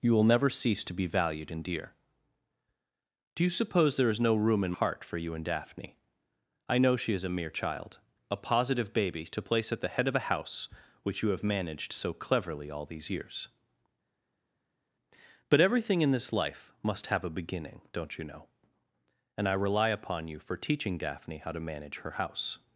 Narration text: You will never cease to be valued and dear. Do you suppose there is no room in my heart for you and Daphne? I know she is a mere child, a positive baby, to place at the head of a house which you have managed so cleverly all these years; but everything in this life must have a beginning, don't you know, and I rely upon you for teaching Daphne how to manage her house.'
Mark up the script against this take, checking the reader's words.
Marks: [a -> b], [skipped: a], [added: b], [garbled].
You will never cease to be valued and dear. Do you suppose there is no room in [skipped: my] heart for you and Daphne? I know she is a mere child, a positive baby, to place at the head of a house which you have managed so cleverly all these years; but everything in this life must have a beginning, don't you know, and I rely upon you for teaching Daphne how to manage her house.'